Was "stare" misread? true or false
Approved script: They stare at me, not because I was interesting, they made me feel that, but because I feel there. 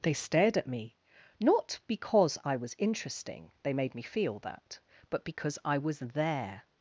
true